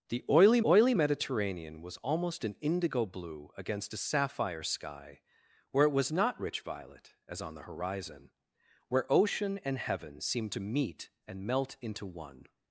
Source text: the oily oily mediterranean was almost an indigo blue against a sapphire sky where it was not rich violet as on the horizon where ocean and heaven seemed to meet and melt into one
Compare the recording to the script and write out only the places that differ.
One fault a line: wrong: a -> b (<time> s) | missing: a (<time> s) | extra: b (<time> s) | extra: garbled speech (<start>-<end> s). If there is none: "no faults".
no faults